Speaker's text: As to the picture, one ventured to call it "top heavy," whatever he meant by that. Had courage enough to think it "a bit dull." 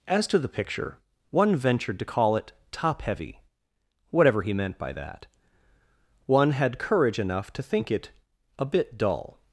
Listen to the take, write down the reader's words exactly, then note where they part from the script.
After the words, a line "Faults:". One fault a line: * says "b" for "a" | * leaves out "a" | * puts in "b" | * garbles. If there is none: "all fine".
As to the picture, one ventured to call it "top heavy," whatever he meant by that. One had courage enough to think it "a bit dull."
Faults:
* puts in "One"